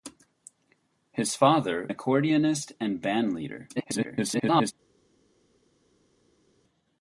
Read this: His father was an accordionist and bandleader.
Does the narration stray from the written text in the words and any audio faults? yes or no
yes